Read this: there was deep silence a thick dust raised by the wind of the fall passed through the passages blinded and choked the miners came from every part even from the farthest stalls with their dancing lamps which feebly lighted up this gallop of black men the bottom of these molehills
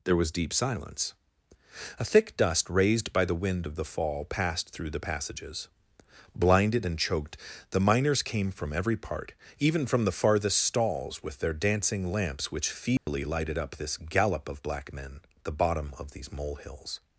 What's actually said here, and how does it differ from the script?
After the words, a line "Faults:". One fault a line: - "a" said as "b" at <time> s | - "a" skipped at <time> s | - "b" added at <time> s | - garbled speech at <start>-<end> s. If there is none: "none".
there was deep silence a thick dust raised by the wind of the fall passed through the passages blinded and choked the miners came from every part even from the farthest stalls with their dancing lamps which feebly lighted up this gallop of black men the bottom of these molehills
Faults:
none